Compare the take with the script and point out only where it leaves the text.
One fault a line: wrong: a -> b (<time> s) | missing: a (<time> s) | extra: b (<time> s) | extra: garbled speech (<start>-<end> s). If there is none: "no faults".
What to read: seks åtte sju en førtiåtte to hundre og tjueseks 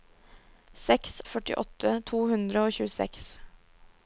missing: åtte sju en (1.2 s)